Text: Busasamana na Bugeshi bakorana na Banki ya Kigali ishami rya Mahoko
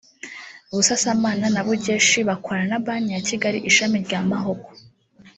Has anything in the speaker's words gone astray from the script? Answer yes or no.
no